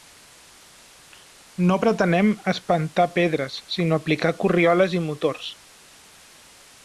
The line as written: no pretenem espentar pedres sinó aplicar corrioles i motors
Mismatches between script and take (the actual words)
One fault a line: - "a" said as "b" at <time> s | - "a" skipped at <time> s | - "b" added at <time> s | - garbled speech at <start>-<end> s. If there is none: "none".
none